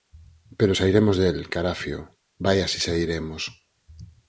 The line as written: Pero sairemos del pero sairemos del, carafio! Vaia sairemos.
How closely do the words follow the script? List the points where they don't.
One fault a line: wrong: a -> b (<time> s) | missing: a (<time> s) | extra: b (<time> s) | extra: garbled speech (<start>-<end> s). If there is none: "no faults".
missing: pero sairemos del (1.5 s)
extra: si (2.7 s)